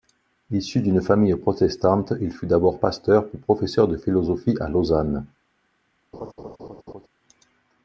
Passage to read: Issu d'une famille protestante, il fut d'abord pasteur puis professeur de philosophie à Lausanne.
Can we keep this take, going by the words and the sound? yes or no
no